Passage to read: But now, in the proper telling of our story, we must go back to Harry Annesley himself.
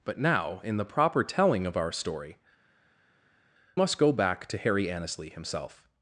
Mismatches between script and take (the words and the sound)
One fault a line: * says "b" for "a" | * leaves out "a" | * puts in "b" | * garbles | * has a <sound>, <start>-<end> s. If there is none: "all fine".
* leaves out "we"